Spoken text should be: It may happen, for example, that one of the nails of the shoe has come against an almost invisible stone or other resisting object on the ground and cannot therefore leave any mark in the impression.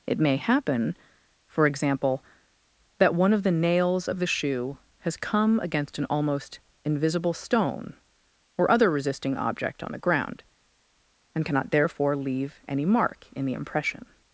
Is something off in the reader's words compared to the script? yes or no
no